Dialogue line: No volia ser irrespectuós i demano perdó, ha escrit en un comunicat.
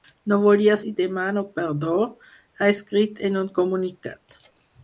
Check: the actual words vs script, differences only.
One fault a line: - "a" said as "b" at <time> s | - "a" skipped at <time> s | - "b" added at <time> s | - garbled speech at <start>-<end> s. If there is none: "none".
- "ser irrespectuós" skipped at 0.8 s